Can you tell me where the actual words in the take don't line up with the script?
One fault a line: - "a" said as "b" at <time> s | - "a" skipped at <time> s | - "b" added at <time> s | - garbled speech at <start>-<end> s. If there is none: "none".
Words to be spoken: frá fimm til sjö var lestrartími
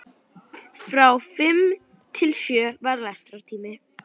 none